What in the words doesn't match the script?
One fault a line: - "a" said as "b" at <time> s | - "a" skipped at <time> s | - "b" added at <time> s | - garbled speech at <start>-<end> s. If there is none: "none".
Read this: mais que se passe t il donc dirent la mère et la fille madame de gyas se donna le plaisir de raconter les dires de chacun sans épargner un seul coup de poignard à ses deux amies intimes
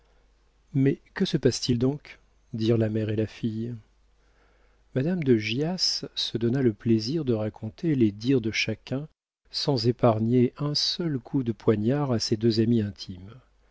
none